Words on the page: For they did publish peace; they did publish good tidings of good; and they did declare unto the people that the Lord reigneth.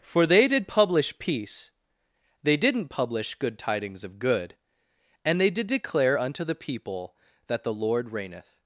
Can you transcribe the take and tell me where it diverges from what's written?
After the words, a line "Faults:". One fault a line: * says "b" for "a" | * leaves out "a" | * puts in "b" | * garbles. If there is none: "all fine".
For they did publish peace; they didn't publish good tidings of good; and they did declare unto the people that the Lord reigneth.
Faults:
* says "didn't" for "did"